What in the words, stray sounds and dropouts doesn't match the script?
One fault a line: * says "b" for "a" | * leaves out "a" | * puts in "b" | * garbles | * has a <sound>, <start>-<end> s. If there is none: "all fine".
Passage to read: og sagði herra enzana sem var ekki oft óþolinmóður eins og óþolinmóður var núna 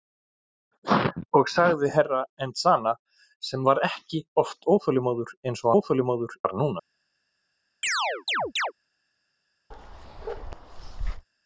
* has a chirp, 7.8-8.7 s
* has a bark, 9.7-11.3 s